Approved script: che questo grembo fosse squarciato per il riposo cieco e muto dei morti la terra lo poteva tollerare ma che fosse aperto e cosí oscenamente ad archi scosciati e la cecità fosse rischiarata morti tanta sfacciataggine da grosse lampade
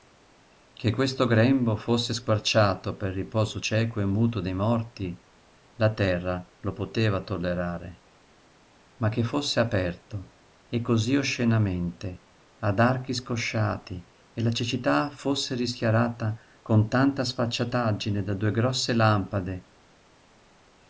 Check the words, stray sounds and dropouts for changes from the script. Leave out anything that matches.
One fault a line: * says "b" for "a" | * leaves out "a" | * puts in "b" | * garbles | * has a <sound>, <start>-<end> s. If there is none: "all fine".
* says "con" for "morti"
* puts in "due"